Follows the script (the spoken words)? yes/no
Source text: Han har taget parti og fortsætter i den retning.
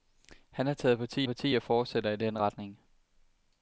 no